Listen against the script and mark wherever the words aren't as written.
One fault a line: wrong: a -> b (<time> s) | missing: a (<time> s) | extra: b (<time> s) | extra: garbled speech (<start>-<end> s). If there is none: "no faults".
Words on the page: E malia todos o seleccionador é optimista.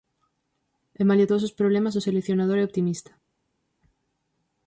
extra: os problemas (1.5 s)